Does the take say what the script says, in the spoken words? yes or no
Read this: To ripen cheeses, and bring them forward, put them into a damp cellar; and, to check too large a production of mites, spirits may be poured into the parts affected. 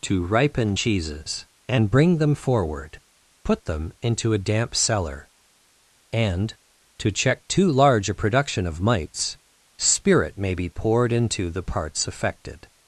no